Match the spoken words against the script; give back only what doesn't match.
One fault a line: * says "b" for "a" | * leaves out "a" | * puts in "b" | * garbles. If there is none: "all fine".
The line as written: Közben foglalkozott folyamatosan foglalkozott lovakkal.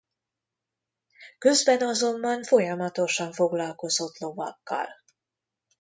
* says "azonban" for "foglalkozott"